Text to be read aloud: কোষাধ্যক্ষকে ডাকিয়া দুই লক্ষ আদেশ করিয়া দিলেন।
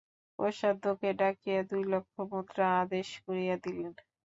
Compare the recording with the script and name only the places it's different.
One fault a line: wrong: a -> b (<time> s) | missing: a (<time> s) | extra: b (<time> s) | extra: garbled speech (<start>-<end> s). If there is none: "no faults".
extra: মুদ্রা (2.3 s)